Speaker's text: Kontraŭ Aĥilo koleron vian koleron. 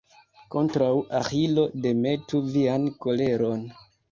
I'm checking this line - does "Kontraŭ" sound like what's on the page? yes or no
yes